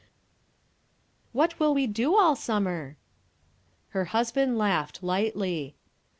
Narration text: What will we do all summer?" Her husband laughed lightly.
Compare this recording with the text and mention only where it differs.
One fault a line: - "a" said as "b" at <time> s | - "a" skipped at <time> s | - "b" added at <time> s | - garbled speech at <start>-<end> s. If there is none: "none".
none